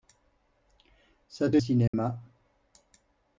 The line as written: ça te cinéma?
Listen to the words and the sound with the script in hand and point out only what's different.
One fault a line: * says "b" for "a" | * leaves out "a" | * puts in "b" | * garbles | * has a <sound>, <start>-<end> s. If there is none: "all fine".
* has a dropout, 1.9-1.9 s